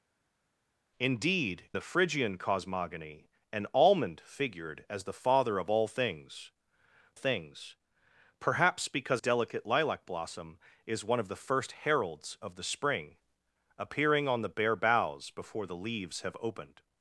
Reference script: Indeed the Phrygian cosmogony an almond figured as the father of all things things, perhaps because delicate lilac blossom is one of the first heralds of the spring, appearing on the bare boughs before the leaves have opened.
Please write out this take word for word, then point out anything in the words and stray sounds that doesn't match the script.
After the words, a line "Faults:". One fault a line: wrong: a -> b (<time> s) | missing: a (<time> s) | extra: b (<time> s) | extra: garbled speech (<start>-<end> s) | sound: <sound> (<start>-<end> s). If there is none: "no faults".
Indeed the Phrygian cosmogony an almond figured as the father of all things things, perhaps because delicate lilac blossom is one of the first heralds of the spring, appearing on the bare boughs before the leaves have opened.
Faults:
no faults